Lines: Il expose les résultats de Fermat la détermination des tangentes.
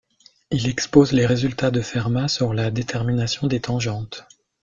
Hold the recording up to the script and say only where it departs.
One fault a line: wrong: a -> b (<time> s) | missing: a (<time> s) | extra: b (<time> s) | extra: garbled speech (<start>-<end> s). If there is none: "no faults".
extra: sur (2.3 s)